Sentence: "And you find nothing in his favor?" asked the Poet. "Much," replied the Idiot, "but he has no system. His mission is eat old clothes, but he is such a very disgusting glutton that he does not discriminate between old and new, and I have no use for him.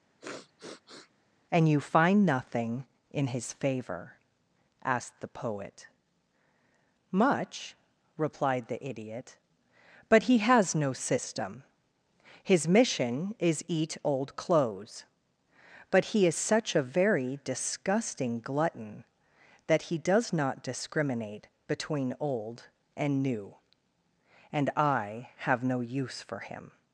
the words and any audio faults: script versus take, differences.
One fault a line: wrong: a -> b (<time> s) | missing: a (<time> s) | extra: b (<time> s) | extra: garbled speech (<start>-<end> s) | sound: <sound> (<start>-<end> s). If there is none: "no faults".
sound: sniff (0.2-1.1 s)